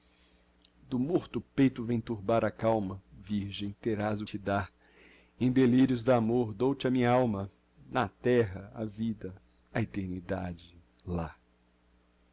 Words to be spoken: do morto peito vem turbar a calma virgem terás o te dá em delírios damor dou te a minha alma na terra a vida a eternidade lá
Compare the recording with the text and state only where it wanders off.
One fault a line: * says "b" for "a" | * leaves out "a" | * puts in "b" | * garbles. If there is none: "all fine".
all fine